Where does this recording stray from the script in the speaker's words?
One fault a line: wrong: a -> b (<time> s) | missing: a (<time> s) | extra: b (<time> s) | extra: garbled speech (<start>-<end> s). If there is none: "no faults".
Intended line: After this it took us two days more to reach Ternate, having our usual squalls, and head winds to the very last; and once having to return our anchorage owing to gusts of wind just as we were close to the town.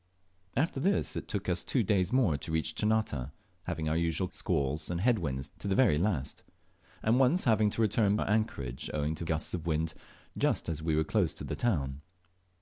no faults